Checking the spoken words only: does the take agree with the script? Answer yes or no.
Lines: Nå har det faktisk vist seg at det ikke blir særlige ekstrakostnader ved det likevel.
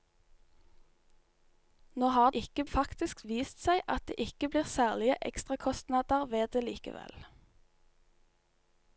no